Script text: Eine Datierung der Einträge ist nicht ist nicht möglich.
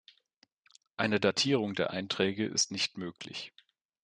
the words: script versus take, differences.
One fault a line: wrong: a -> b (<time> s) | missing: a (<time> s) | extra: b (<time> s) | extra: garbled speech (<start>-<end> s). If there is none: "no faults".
missing: ist nicht (3.0 s)